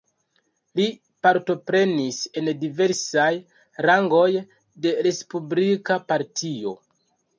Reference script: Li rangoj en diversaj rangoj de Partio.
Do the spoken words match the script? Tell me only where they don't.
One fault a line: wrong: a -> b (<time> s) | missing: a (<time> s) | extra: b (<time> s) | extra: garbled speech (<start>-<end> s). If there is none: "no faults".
wrong: rangoj -> partoprenis (1.2 s)
extra: Respublika (5.1 s)